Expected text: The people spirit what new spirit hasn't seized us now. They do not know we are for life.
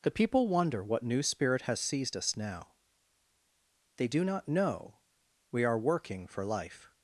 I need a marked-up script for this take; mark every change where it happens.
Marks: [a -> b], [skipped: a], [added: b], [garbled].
The people [spirit -> wonder] what new spirit [hasn't -> has] seized us now. They do not know we are [added: working] for life.